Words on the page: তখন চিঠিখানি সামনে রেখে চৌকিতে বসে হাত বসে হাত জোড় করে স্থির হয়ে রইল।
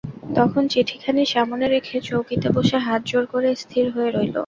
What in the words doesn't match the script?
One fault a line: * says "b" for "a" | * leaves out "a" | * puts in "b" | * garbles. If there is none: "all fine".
* leaves out "বসে হাত"